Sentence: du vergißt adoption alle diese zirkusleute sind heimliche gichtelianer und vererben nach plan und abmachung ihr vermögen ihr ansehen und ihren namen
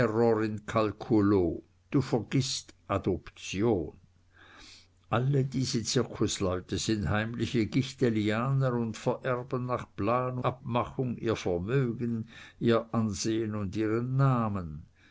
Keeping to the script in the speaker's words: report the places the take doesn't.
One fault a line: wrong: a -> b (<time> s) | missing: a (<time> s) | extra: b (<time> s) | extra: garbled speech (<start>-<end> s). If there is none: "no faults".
missing: und (10.4 s)